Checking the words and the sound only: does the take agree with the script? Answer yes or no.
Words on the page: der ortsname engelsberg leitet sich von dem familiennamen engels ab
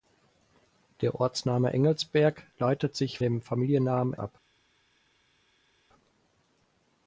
no